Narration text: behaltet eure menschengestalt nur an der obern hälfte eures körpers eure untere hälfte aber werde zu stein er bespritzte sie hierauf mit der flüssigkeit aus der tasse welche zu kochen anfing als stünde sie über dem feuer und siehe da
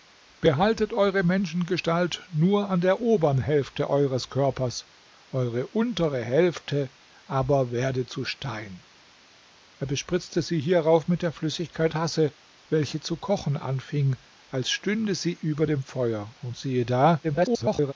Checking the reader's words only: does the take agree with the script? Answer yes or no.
no